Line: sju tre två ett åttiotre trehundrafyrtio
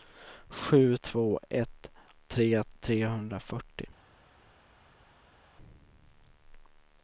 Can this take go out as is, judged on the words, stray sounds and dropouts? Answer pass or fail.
fail